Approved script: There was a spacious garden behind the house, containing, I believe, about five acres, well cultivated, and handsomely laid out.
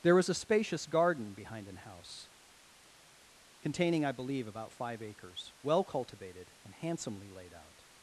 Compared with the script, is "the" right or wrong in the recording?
wrong